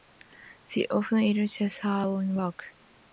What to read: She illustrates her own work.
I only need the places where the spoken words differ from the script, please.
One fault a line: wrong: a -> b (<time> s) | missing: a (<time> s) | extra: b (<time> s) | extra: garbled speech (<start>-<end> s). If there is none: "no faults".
extra: often (0.9 s)